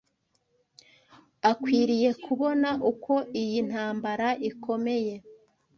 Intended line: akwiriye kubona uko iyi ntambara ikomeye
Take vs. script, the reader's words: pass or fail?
pass